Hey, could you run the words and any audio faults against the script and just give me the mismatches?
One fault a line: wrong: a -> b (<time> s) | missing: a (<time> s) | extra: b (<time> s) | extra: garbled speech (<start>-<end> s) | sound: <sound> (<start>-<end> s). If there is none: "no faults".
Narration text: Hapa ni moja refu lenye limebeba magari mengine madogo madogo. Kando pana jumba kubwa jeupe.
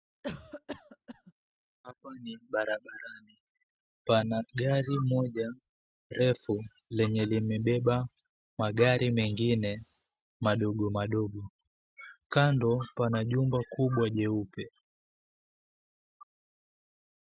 sound: cough (0.2-1.3 s)
extra: barabarani Pana gari (2.5 s)